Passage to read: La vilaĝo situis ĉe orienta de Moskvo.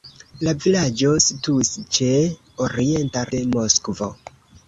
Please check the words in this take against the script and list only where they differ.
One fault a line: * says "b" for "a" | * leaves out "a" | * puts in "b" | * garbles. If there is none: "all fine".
all fine